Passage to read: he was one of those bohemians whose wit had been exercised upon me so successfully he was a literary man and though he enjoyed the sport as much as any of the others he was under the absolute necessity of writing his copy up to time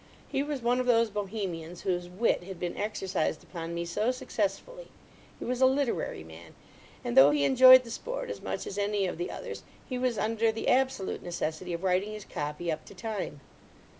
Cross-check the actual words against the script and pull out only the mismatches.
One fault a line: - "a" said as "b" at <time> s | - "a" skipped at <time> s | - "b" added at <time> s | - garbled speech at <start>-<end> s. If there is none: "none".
none